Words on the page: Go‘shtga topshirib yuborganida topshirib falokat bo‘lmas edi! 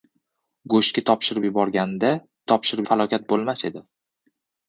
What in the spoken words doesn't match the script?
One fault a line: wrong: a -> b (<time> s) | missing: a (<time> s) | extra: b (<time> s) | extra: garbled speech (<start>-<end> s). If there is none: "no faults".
no faults